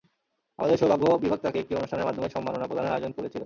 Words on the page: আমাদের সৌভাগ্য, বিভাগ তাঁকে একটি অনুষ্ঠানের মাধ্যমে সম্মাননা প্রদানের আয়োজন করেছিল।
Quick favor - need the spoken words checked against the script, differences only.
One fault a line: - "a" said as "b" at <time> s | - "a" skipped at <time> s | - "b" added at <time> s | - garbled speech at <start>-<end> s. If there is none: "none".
none